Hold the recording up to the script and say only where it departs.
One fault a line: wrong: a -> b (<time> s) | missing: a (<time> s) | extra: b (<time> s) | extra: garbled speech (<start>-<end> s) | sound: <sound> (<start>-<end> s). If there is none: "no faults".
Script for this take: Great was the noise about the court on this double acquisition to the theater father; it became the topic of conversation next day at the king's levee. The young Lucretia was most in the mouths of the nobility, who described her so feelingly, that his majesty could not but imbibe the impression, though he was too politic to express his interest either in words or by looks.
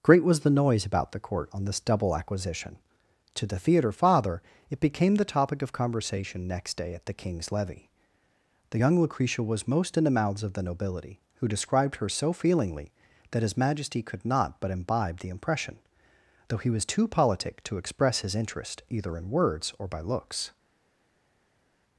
no faults